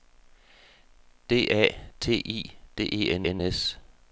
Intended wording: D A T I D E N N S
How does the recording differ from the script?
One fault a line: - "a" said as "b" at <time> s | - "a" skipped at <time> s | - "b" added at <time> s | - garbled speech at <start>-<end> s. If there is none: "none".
none